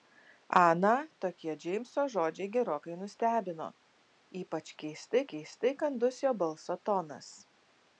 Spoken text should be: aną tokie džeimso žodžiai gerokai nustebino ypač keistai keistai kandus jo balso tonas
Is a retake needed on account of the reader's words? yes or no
no